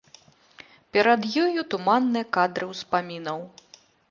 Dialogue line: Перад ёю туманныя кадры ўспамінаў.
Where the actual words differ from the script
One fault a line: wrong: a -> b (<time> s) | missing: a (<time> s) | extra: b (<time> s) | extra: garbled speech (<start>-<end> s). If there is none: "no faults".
no faults